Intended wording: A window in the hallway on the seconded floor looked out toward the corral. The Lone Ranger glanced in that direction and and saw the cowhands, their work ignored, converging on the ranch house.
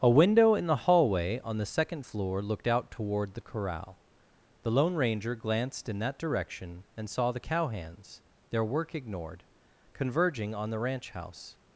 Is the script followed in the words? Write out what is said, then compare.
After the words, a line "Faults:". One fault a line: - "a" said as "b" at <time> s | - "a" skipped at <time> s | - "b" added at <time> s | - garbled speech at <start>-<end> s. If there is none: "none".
A window in the hallway on the second floor looked out toward the corral. The Lone Ranger glanced in that direction and saw the cowhands, their work ignored, converging on the ranch house.
Faults:
- "seconded" said as "second" at 1.6 s
- "and" skipped at 7.1 s